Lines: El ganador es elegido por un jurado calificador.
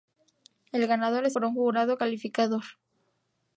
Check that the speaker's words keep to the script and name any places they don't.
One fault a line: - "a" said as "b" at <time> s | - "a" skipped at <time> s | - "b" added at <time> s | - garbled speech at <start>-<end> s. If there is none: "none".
- "elegido" skipped at 1.4 s